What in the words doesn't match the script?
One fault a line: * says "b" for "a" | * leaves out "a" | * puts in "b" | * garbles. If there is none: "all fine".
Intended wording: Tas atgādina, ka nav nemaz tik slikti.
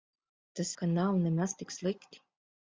* leaves out "atgādina"